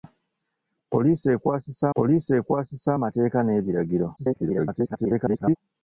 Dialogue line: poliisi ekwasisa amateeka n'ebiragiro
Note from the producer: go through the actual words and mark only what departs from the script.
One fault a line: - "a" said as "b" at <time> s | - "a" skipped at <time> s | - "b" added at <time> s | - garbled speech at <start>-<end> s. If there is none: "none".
- "poliisi ekwasisa" added at 2.0 s
- garbled speech at 4.2-5.6 s